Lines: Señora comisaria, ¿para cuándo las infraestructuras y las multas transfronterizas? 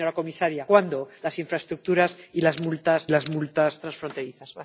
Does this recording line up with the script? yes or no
no